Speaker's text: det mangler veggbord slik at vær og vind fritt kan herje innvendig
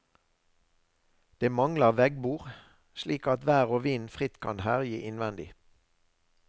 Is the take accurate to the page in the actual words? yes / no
yes